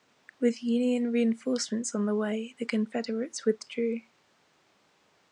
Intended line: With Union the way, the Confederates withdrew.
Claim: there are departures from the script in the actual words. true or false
true